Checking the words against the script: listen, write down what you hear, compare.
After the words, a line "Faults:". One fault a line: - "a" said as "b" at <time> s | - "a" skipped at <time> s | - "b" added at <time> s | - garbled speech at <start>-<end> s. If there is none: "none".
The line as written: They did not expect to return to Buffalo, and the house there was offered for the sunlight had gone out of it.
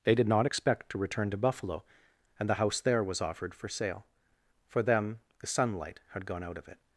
They did not expect to return to Buffalo, and the house there was offered for sale. For them the sunlight had gone out of it.
Faults:
- "sale For them" added at 3.7 s